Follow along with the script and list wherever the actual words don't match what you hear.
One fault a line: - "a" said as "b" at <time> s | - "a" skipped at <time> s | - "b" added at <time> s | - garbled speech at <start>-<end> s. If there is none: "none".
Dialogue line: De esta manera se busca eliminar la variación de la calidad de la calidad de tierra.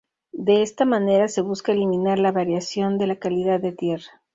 - "la calidad de" skipped at 3.7 s